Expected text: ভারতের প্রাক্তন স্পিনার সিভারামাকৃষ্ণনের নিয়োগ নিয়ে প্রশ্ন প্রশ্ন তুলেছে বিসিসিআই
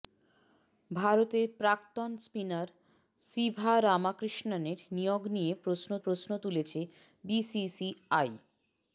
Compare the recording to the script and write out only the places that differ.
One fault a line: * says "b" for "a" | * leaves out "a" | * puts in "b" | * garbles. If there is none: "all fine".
all fine